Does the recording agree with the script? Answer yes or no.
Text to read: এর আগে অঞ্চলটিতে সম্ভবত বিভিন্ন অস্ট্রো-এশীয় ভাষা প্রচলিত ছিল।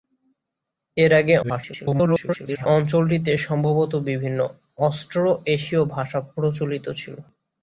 no